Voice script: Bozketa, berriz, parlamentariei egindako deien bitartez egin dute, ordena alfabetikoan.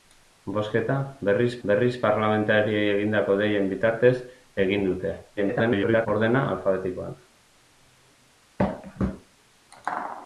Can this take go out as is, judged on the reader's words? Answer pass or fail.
fail